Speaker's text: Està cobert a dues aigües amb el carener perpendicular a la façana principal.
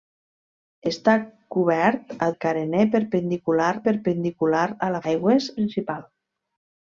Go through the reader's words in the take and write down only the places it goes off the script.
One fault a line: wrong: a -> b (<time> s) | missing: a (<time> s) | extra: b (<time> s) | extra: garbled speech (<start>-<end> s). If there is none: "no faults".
missing: dues aigües amb (2.3 s)
extra: perpendicular (3.9 s)
wrong: façana -> aigües (5.0 s)